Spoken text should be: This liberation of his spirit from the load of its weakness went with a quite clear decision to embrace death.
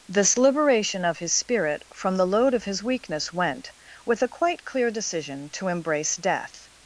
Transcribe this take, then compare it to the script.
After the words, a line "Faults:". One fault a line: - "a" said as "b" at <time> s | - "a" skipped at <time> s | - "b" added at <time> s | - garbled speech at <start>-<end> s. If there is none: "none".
This liberation of his spirit from the load of his weakness went with a quite clear decision to embrace death.
Faults:
- "its" said as "his" at 2.6 s